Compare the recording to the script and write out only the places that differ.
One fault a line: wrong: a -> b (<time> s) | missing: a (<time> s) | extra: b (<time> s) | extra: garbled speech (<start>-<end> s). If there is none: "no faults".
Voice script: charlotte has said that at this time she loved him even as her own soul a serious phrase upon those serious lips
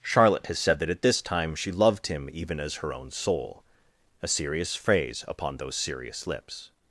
no faults